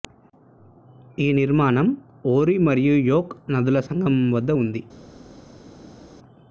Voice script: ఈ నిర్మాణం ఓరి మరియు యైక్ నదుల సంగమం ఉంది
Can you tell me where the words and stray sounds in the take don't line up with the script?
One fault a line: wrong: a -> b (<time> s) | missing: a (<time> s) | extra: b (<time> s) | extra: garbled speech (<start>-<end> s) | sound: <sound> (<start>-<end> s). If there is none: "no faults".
extra: వద్ద (4.4 s)